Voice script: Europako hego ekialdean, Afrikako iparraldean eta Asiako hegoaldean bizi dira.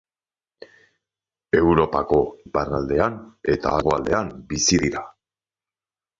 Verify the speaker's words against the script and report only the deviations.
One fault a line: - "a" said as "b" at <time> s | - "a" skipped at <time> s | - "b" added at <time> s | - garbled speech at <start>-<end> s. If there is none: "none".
- "hego ekialdean Afrikako" skipped at 2.2 s
- "Asiako" skipped at 3.8 s